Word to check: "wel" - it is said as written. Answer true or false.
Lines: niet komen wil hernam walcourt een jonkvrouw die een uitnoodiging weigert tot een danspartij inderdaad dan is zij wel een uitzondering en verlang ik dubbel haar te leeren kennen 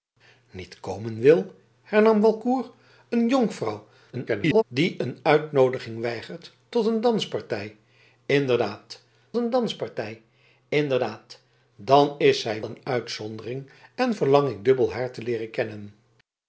false